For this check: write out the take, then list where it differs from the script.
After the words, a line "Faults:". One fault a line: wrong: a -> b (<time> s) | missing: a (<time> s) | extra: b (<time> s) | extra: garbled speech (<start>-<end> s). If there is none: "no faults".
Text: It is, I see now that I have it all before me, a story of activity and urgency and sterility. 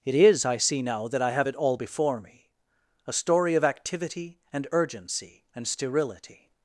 It is, I see now that I have it all before me, a story of activity and urgency and sterility.
Faults:
no faults